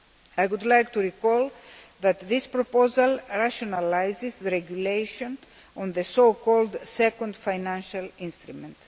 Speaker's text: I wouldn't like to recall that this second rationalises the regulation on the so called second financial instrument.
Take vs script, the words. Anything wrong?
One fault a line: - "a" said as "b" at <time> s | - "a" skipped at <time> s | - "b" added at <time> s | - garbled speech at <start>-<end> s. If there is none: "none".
- "wouldn't" said as "would" at 0.5 s
- "second" said as "proposal" at 2.5 s